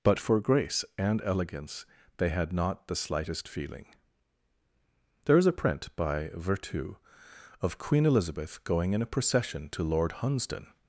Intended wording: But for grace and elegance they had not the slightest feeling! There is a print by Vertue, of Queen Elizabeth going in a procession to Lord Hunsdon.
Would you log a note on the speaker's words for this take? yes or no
no